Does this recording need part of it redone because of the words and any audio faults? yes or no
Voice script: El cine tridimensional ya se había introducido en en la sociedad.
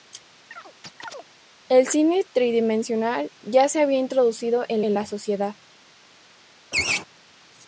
yes